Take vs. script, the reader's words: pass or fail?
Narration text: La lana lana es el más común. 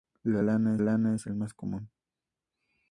pass